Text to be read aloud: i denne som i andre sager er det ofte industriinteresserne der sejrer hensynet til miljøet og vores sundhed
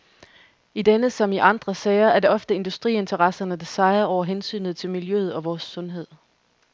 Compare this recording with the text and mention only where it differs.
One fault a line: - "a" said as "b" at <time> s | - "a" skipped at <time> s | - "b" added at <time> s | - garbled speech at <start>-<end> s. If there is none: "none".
- "over" added at 4.0 s